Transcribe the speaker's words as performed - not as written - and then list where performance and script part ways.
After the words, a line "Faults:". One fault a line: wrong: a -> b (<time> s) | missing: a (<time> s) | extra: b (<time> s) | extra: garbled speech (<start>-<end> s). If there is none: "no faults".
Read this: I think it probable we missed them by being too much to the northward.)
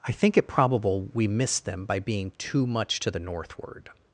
I think it probable we missed them by being too much to the northward.)
Faults:
no faults